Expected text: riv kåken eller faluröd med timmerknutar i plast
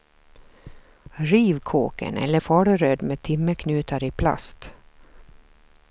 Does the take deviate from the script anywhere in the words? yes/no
no